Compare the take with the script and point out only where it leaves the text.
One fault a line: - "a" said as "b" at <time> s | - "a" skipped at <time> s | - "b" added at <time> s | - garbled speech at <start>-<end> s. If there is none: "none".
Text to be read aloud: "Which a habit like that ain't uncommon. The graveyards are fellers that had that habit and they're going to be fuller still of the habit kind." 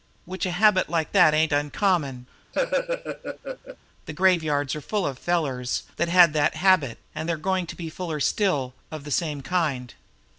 - "full of" added at 4.8 s
- "habit" said as "same" at 9.1 s